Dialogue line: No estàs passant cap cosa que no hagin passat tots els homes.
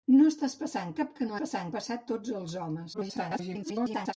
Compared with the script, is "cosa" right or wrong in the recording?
wrong